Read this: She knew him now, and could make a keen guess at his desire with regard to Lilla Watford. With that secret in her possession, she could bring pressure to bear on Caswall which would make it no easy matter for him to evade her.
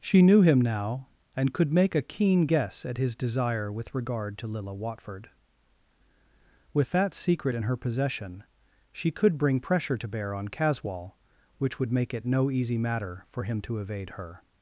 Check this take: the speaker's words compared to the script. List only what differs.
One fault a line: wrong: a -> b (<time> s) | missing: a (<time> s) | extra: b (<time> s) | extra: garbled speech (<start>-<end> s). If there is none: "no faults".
no faults